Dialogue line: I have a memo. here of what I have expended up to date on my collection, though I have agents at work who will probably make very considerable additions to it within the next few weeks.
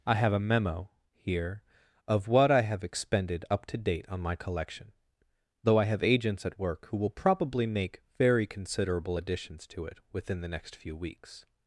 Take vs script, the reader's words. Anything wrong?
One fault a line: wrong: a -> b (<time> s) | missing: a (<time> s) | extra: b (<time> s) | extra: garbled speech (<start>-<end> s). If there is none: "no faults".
no faults